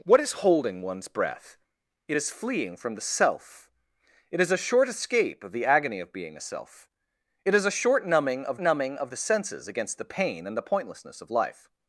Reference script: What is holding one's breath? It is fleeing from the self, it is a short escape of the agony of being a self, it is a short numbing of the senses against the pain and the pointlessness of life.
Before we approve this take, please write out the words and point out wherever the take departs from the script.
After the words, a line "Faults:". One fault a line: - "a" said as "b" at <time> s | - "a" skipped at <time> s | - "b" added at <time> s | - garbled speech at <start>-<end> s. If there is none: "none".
What is holding one's breath? It is fleeing from the self, it is a short escape of the agony of being a self, it is a short numbing of numbing of the senses against the pain and the pointlessness of life.
Faults:
- "numbing of" added at 8.6 s